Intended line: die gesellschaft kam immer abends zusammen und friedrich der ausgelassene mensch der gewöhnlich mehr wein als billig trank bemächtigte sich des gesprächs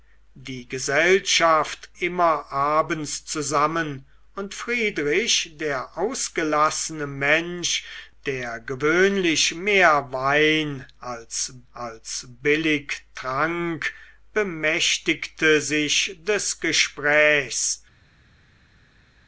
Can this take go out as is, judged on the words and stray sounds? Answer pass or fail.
fail